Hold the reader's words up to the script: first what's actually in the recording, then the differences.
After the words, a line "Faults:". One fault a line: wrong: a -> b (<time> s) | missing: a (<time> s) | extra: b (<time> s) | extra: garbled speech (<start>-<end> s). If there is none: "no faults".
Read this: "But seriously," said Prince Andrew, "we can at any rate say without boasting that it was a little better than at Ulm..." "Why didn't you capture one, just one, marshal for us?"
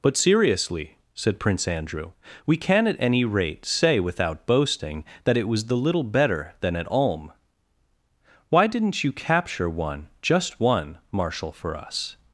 "But seriously," said Prince Andrew, "we can at any rate say without boasting that it was the little better than at Ulm..." "Why didn't you capture one, just one, marshal for us?"
Faults:
wrong: a -> the (5.7 s)